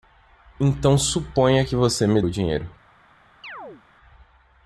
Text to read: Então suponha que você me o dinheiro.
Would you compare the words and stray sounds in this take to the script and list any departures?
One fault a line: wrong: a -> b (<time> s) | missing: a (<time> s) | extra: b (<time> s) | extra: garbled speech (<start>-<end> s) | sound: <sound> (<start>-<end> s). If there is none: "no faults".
sound: chirp (3.4-3.8 s)